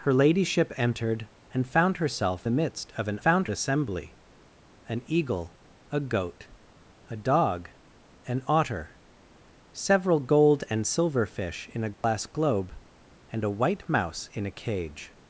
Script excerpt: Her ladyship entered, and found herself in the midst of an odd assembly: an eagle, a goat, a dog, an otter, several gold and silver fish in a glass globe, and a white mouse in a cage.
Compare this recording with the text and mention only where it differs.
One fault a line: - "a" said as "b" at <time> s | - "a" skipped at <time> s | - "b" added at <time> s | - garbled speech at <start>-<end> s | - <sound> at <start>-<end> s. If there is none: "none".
- "in" skipped at 2.5 s
- "odd" said as "found" at 3.2 s
- dropout at 11.9-12.0 s